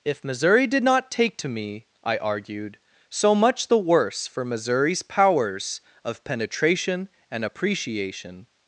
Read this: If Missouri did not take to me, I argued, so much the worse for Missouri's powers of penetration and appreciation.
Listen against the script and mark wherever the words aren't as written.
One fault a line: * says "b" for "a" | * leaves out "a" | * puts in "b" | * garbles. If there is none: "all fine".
all fine